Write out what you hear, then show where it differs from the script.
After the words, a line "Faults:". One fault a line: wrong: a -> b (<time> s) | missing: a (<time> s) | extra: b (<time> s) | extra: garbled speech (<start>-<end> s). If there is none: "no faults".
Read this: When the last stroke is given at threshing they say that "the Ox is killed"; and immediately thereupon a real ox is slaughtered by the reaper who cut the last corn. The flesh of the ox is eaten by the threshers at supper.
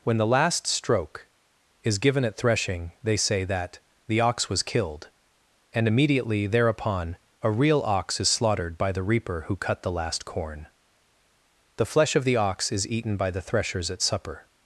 When the last stroke is given at threshing they say that "the Ox was killed"; and immediately thereupon a real ox is slaughtered by the reaper who cut the last corn. The flesh of the ox is eaten by the threshers at supper.
Faults:
wrong: is -> was (4.5 s)